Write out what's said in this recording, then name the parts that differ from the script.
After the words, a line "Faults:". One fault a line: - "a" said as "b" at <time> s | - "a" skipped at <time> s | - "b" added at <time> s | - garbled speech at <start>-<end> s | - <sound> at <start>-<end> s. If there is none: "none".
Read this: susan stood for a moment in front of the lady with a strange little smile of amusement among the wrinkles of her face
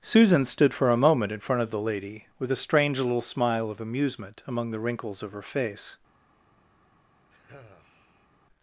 susan stood for a moment in front of the lady with a strange little smile of amusement among the wrinkles of her face
Faults:
- sigh at 7.3-8.3 s